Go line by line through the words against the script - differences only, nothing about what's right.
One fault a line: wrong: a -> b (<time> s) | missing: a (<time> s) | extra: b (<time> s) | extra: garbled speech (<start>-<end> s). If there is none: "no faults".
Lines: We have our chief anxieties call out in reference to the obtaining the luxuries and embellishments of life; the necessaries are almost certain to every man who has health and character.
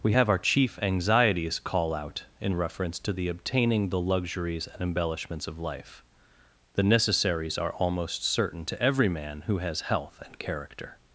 no faults